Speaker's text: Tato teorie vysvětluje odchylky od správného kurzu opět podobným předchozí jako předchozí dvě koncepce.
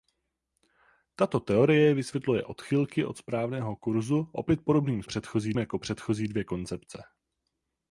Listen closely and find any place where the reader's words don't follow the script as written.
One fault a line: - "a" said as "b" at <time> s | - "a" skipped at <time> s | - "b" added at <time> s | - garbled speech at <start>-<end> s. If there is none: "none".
none